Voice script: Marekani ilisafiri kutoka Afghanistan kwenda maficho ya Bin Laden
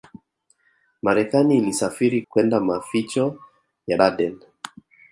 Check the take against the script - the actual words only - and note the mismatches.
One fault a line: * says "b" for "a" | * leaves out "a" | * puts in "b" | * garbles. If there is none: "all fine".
* leaves out "kutoka Afghanistan"
* leaves out "Bin"